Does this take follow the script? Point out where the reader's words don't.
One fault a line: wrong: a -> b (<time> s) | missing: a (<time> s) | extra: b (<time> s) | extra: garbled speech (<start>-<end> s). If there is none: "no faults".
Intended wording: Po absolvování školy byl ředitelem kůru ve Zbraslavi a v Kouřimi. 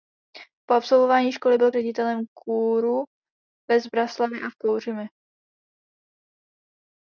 no faults